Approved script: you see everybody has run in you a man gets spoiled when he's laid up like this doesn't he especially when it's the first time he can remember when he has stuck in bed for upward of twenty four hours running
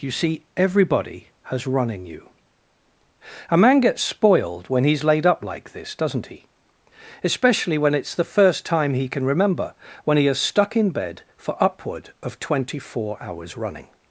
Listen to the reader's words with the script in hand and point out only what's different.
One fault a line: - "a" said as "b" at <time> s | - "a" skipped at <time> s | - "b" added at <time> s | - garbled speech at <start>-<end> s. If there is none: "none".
none